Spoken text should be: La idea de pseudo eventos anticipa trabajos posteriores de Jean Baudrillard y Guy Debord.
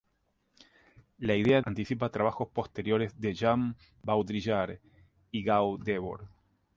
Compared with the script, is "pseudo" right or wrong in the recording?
wrong